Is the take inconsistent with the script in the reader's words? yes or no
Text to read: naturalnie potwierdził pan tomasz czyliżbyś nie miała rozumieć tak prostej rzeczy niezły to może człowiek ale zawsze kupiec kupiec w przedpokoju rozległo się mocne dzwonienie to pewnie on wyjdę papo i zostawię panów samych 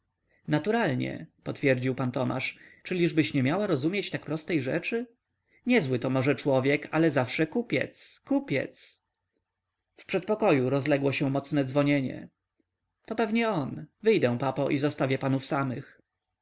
no